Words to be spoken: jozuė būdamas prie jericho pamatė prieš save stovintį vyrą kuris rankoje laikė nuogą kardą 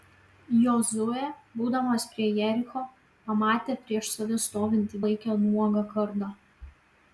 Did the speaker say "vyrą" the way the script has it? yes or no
no